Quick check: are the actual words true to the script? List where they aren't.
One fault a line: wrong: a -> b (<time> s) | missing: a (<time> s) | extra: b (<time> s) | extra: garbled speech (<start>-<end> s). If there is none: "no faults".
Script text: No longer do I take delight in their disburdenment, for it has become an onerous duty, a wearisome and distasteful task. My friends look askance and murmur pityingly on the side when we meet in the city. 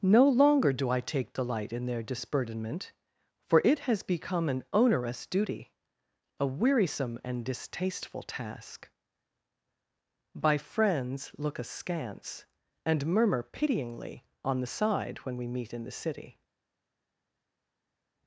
wrong: My -> By (10.3 s)